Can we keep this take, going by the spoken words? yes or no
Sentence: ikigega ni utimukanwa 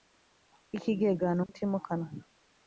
yes